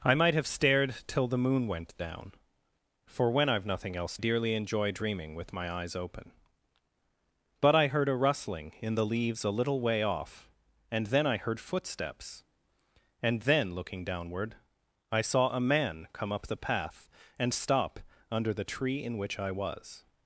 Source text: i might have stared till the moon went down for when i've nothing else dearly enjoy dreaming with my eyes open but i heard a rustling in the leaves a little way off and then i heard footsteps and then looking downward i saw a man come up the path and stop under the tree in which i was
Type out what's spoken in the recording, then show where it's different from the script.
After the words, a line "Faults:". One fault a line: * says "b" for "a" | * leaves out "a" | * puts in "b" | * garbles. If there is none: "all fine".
i might have stared till the moon went down for when i've nothing else dearly enjoy dreaming with my eyes open but i heard a rustling in the leaves a little way off and then i heard footsteps and then looking downward i saw a man come up the path and stop under the tree in which i was
Faults:
all fine